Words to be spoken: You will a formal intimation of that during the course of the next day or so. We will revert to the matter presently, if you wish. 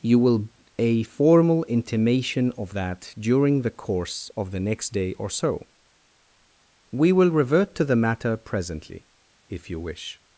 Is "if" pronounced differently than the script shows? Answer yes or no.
no